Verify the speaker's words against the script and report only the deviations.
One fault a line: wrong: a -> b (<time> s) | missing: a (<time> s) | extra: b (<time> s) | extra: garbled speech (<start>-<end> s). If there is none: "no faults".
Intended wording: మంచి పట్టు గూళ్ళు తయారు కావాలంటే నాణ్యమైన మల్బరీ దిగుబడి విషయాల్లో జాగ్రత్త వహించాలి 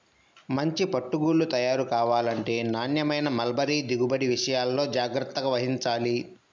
no faults